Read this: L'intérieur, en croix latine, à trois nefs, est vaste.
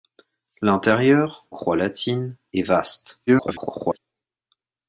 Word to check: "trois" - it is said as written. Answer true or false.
false